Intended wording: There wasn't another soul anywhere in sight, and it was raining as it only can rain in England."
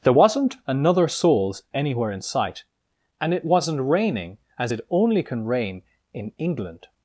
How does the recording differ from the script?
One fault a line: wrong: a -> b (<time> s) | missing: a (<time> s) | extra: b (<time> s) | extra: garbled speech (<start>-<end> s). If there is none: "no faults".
wrong: soul -> souls (1.1 s)
wrong: was -> wasn't (3.4 s)